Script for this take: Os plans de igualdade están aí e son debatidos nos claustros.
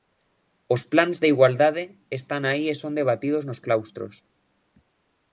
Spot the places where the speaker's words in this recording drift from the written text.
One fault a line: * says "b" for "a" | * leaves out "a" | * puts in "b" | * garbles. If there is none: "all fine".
all fine